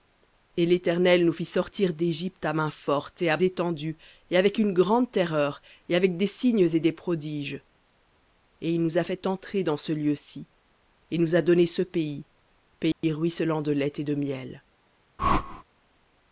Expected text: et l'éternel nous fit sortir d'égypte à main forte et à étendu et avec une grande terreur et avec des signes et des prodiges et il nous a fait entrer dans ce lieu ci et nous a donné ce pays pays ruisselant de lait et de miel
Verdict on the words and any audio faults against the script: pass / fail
fail